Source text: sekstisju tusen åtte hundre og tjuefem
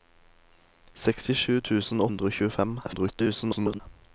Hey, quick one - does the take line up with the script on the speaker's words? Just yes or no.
no